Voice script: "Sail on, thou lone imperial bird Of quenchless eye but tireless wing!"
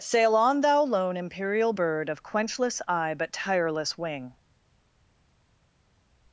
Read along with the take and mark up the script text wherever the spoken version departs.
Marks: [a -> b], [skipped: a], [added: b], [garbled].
"Sail on, thou lone imperial bird Of quenchless eye but tireless wing!"